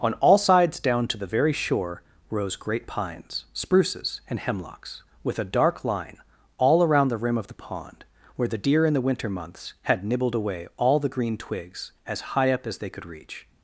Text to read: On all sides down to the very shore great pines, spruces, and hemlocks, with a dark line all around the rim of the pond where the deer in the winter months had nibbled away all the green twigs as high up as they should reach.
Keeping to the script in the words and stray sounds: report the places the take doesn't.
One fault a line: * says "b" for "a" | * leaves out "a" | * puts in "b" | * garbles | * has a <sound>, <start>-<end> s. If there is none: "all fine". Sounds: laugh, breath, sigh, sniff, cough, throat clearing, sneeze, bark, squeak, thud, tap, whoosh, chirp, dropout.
* puts in "rose"
* says "could" for "should"